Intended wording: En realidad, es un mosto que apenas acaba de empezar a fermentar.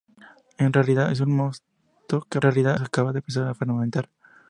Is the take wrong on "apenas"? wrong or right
wrong